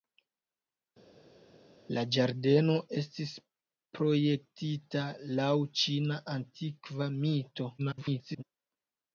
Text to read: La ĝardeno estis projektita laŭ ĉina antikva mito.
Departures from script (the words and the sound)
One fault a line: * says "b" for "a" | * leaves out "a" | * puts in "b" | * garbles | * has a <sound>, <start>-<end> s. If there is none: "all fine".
* garbles